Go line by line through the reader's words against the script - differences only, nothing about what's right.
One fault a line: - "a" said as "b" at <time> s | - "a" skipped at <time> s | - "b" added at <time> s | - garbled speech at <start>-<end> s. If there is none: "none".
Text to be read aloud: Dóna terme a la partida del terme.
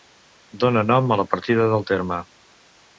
- "terme" said as "nom" at 0.9 s